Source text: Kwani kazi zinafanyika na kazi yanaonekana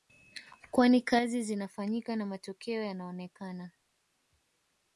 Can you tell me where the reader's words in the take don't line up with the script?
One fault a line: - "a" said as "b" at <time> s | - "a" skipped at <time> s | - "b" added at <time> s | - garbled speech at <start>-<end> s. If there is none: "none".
- "kazi" said as "matokeo" at 2.2 s